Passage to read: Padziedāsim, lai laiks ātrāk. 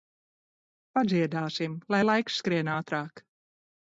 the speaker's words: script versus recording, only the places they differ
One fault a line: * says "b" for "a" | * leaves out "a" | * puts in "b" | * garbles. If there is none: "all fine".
* puts in "skrien"